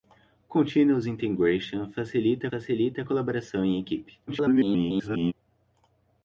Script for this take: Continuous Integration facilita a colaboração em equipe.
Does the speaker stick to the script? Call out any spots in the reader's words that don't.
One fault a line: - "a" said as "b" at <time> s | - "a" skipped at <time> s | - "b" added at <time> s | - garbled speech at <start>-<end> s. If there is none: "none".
- "facilita" added at 2.5 s
- garbled speech at 4.3-5.3 s